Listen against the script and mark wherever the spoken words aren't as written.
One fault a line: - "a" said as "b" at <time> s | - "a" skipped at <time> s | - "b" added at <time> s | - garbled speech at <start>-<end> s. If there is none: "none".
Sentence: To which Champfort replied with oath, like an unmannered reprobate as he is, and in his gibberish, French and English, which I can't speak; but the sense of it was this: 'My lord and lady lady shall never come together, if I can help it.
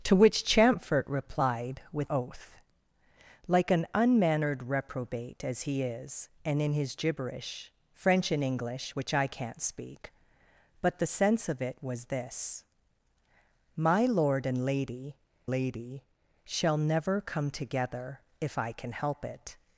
none